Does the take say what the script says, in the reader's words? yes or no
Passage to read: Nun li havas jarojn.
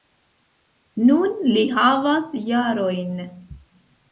yes